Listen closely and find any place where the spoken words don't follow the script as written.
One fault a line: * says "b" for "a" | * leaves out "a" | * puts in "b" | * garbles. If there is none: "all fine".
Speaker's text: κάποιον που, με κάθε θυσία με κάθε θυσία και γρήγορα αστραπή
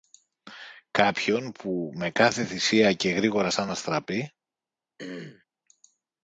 * leaves out "με κάθε θυσία"
* puts in "σαν"